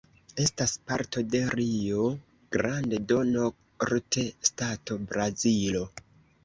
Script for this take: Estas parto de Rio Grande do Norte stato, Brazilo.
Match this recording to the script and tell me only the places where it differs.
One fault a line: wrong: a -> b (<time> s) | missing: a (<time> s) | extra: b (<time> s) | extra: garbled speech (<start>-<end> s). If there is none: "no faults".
no faults